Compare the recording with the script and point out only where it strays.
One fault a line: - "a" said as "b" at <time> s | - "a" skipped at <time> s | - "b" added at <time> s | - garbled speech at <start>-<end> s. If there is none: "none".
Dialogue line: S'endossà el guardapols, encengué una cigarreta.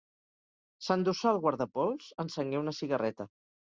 none